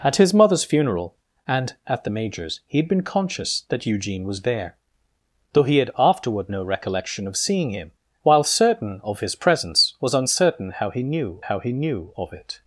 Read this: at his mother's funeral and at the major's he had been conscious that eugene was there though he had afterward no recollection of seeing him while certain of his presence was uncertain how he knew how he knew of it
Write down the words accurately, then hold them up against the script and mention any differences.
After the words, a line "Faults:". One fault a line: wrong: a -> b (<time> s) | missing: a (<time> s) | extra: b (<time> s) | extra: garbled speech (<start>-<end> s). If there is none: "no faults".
at his mother's funeral and at the major's he had been conscious that eugene was there though he had afterward no recollection of seeing him while certain of his presence was uncertain how he knew how he knew of it
Faults:
no faults